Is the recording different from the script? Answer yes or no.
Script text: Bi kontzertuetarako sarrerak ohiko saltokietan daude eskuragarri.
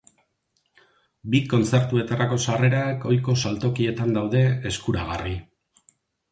no